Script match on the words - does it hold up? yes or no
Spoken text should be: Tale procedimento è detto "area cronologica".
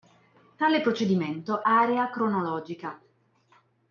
no